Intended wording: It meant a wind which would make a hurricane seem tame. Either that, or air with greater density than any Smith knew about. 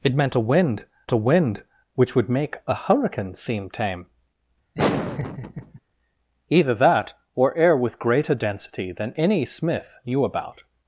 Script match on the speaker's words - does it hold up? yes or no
no